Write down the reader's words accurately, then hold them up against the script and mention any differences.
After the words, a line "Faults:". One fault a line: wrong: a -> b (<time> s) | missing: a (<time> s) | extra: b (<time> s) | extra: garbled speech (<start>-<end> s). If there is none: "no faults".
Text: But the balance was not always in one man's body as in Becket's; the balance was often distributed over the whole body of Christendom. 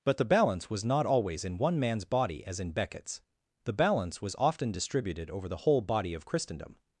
But the balance was not always in one man's body as in Becket's; the balance was often distributed over the whole body of Christendom.
Faults:
no faults